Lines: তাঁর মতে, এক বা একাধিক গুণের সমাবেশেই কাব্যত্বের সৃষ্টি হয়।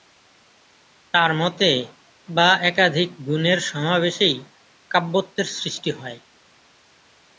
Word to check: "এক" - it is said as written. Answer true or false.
false